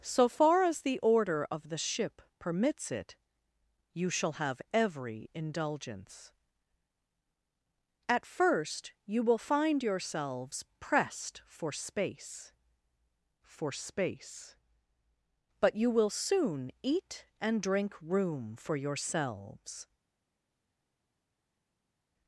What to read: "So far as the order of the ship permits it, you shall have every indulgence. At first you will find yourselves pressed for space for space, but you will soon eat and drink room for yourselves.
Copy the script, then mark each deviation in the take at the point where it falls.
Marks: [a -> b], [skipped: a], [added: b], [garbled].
"So far as the order of the ship permits it, you shall have every indulgence. At first you will find yourselves pressed for space for space, but you will soon eat and drink room for yourselves.